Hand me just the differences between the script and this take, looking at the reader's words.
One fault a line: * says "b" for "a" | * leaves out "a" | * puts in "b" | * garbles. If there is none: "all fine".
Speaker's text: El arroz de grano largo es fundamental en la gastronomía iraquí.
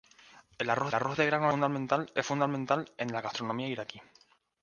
* puts in "arroz"
* says "fundamental" for "largo"